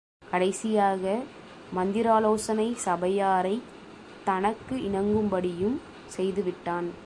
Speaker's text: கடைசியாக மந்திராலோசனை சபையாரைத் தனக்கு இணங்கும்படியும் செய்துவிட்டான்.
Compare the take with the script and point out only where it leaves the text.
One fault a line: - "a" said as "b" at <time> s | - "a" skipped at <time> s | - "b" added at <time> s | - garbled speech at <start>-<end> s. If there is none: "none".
none